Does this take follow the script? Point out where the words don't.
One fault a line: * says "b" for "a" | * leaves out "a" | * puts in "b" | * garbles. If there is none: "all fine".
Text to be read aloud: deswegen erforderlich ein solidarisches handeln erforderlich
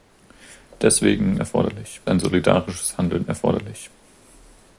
all fine